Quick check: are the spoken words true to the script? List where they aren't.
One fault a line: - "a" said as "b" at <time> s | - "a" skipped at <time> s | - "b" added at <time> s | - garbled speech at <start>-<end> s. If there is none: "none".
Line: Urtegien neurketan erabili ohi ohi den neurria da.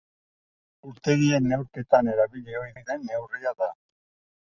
none